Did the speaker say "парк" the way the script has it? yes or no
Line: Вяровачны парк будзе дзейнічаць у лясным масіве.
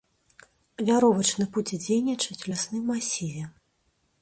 no